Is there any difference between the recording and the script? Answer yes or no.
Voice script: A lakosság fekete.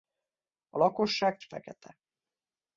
no